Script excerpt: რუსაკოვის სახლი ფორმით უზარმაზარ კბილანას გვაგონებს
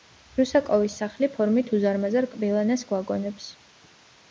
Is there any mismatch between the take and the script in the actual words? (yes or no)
no